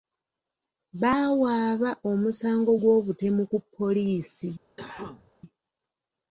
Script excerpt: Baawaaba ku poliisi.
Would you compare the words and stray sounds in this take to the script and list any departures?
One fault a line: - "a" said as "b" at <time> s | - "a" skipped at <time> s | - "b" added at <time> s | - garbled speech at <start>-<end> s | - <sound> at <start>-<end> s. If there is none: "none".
- "omusango gw'obutemu" added at 2.1 s
- cough at 4.8-5.3 s